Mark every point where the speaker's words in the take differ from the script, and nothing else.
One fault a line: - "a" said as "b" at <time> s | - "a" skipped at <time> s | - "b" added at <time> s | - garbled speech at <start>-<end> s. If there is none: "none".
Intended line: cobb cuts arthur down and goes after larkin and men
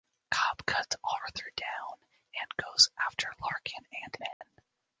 none